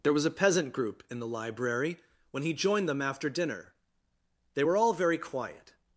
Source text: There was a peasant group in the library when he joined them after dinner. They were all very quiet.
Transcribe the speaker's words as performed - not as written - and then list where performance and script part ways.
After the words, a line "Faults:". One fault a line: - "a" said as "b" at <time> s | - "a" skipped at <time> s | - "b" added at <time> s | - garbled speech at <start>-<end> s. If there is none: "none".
There was a peasant group in the library when he joined them after dinner. They were all very quiet.
Faults:
none